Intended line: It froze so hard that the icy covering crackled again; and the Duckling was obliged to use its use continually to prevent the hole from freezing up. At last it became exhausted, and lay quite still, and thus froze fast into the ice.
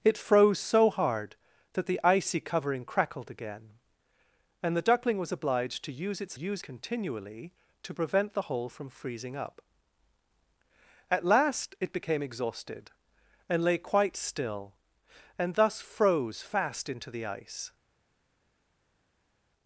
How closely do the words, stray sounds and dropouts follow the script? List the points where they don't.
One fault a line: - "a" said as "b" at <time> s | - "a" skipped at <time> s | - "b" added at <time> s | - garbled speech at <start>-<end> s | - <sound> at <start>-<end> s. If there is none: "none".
none